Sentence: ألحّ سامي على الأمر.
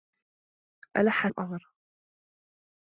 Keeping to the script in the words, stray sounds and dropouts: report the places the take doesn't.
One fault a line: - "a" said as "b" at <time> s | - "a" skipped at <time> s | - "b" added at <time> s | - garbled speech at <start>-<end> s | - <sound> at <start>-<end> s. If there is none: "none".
- "سامي على" skipped at 1.3 s